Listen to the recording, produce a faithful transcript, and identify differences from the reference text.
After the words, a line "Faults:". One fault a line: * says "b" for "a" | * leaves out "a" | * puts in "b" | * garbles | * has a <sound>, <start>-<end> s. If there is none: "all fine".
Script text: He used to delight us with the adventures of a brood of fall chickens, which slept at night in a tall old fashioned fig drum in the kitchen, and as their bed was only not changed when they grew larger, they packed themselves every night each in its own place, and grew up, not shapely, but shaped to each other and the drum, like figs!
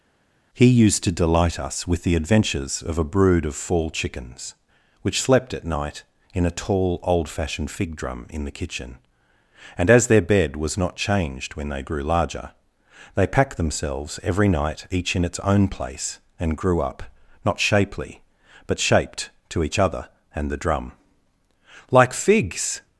He used to delight us with the adventures of a brood of fall chickens, which slept at night in a tall old fashioned fig drum in the kitchen, and as their bed was not changed when they grew larger, they packed themselves every night each in its own place, and grew up, not shapely, but shaped to each other and the drum, like figs!
Faults:
* leaves out "only"